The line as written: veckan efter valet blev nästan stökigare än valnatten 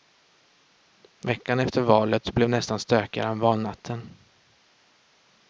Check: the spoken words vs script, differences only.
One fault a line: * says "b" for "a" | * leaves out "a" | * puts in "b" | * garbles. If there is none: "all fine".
all fine